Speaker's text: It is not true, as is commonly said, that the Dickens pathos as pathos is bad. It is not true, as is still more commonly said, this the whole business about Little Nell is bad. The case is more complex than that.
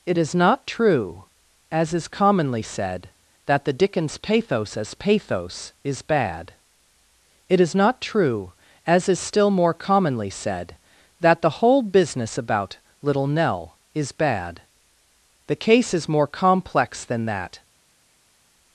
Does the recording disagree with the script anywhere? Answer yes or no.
yes